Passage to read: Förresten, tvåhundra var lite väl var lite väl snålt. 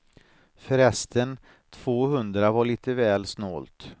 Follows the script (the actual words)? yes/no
no